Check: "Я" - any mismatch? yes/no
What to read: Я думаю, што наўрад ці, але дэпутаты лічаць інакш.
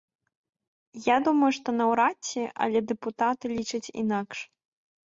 no